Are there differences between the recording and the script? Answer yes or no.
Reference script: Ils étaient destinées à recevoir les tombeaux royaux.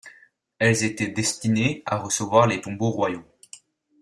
yes